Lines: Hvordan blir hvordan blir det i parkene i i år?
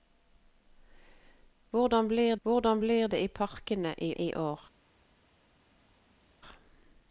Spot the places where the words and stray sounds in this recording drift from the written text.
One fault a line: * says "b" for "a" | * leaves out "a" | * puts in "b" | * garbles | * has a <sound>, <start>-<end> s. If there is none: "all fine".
all fine